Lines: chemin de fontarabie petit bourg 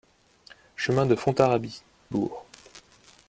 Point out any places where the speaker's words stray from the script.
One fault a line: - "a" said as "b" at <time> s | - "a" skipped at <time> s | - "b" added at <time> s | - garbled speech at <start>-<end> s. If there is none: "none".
- "petit" skipped at 1.8 s